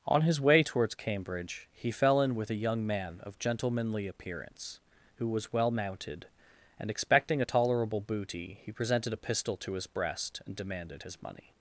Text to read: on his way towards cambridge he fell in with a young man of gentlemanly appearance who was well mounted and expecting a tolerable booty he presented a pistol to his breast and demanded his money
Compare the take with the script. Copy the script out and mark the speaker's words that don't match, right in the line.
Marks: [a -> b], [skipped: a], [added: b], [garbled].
on his way towards cambridge he fell in with a young man of gentlemanly appearance who was well mounted and expecting a tolerable booty he presented a pistol to his breast and demanded his money